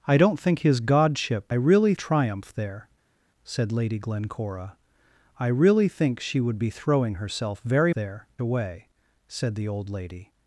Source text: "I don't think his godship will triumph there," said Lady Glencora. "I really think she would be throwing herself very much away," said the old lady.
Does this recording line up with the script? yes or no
no